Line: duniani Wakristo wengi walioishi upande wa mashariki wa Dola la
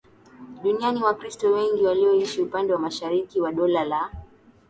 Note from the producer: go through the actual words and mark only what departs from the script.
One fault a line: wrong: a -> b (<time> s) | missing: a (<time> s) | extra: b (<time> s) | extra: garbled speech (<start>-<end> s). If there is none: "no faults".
no faults